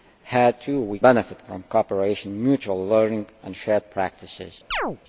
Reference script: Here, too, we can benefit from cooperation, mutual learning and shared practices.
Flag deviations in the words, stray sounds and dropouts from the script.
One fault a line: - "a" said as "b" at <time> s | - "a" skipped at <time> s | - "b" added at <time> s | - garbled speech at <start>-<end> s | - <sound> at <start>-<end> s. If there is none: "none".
- "can" skipped at 1.0 s
- chirp at 4.7-5.0 s